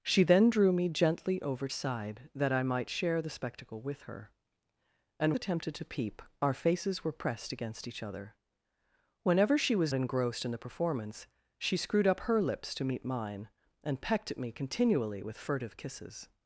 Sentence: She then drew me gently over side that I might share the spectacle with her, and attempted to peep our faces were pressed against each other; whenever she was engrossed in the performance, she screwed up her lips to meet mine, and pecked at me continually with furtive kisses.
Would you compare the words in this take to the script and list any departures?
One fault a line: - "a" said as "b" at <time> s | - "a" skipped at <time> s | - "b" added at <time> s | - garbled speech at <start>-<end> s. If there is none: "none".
none